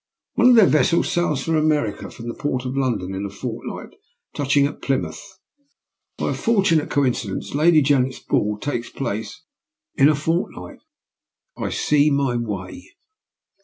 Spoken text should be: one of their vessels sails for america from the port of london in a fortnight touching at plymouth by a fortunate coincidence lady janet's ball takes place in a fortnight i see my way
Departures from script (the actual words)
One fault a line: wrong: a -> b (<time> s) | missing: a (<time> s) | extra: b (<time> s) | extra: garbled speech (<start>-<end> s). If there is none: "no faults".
no faults